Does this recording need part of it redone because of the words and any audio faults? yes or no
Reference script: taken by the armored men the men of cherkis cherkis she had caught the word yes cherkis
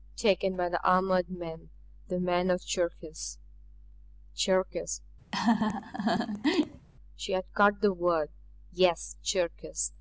yes